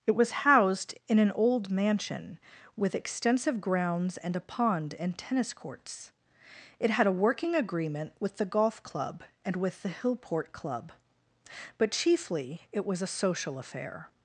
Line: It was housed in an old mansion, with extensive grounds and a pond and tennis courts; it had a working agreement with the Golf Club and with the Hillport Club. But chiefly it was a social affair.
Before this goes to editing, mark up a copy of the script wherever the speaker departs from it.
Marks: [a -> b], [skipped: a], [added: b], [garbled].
It was housed in an old mansion, with extensive grounds and a pond and tennis courts; it had a working agreement with the Golf Club and with the Hillport Club. But chiefly it was a social affair.